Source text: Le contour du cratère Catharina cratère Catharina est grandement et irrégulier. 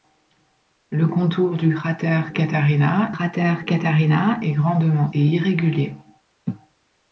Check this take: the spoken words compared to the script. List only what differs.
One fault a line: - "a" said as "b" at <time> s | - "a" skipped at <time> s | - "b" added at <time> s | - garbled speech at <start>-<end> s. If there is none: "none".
none